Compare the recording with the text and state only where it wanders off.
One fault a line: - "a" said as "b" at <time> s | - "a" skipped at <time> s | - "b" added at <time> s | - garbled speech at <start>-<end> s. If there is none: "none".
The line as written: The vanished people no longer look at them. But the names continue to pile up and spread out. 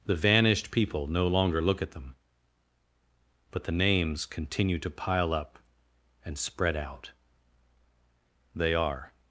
- "They are" added at 8.6 s